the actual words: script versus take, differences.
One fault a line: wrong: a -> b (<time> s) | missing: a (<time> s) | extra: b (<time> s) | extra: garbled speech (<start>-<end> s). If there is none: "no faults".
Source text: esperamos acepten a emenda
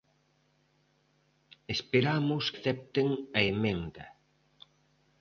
no faults